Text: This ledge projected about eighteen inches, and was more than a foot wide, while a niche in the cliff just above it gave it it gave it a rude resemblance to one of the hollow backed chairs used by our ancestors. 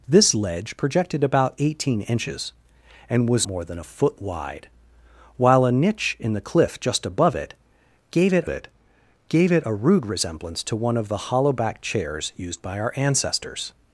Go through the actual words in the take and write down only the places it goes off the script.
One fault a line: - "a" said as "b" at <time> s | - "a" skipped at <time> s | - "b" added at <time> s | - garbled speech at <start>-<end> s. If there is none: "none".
none